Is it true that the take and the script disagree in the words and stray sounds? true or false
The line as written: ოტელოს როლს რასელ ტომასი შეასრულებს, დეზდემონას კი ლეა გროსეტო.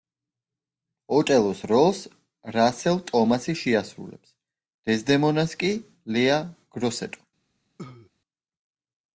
true